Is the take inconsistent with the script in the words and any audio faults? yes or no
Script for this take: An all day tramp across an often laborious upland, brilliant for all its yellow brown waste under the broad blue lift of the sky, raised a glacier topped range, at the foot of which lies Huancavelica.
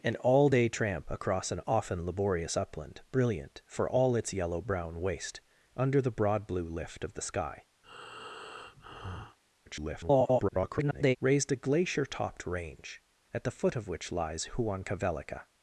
yes